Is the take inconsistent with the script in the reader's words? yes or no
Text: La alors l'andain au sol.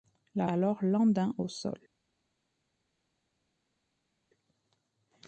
no